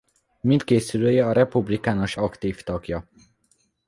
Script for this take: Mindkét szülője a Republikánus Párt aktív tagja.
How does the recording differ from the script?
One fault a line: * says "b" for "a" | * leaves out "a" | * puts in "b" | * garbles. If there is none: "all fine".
* leaves out "Párt"